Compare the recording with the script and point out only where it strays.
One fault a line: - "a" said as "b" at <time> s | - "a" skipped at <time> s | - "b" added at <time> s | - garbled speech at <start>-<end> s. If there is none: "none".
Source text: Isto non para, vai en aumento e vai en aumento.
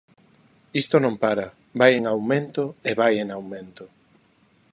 none